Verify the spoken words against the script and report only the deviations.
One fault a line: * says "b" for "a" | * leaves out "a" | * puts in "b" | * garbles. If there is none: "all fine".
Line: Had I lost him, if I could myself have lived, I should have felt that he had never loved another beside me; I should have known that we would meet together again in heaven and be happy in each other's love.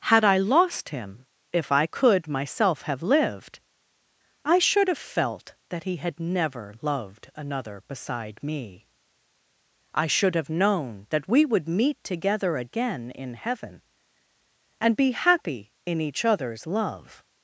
all fine